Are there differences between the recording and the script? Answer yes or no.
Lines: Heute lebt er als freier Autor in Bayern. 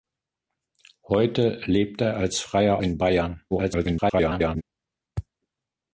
yes